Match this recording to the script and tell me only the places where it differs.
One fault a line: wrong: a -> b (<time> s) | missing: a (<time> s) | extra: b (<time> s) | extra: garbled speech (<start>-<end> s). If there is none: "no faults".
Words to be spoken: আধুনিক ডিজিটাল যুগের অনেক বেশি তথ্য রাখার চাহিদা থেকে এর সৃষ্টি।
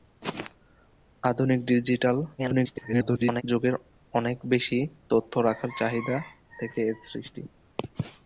extra: garbled speech (2.4-3.4 s)